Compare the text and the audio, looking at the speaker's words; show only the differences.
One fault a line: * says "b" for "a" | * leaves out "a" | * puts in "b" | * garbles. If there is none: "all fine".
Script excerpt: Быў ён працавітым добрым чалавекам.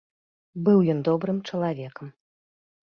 * leaves out "працавітым"